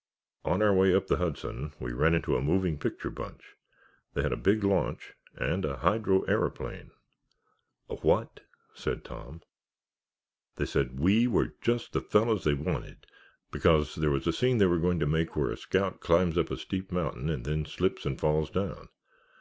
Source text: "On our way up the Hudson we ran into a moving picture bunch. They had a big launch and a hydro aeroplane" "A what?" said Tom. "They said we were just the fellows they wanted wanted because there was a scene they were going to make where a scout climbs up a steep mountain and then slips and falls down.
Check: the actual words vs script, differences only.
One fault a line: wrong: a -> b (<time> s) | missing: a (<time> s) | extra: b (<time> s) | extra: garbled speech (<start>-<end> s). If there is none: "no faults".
missing: wanted (13.1 s)